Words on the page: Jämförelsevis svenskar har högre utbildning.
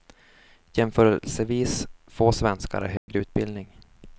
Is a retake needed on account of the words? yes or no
yes